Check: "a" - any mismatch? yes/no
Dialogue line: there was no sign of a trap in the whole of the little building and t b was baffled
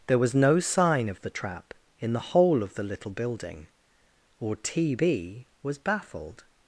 yes